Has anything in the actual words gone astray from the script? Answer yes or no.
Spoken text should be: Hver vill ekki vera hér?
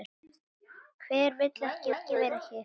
yes